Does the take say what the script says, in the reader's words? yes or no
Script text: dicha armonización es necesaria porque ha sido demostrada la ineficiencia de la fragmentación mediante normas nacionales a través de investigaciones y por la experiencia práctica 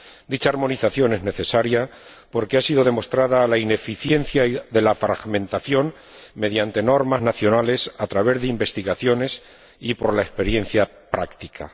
yes